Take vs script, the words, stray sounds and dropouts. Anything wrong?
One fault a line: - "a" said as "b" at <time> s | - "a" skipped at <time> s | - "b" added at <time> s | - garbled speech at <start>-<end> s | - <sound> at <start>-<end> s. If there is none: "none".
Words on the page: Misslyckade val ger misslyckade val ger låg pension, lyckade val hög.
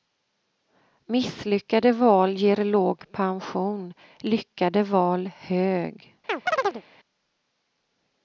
- "misslyckade val ger" skipped at 2.6 s
- chirp at 6.3-6.8 s